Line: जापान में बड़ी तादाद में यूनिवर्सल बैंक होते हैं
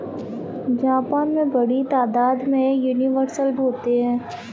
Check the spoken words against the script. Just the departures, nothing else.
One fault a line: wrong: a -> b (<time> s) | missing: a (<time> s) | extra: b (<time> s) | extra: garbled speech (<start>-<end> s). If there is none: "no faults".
missing: बैंक (3.5 s)